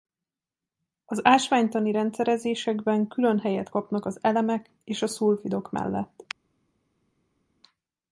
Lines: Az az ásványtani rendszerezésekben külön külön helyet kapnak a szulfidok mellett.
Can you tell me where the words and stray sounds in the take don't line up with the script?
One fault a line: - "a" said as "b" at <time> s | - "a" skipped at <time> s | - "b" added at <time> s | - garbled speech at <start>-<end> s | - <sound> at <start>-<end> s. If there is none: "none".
- "az" skipped at 1.2 s
- "külön" skipped at 3.4 s
- "az elemek és" added at 4.0 s